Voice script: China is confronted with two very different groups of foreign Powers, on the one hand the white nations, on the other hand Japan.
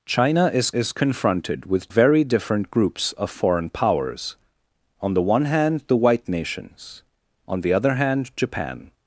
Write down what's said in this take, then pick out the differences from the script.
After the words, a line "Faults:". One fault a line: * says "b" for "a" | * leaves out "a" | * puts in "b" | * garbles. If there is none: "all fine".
China is is confronted with very different groups of foreign Powers, on the one hand the white nations, on the other hand Japan.
Faults:
* puts in "is"
* leaves out "two"